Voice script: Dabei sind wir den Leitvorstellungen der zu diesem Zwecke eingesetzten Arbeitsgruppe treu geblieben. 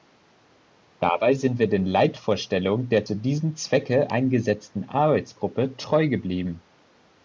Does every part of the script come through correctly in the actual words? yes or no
yes